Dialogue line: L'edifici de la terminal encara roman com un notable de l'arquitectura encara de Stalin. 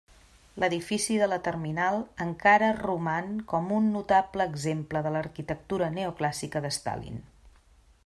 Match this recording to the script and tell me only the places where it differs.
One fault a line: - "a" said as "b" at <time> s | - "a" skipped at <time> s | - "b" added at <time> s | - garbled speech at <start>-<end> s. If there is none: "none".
- "exemple" added at 4.5 s
- "encara" said as "neoclàssica" at 6.0 s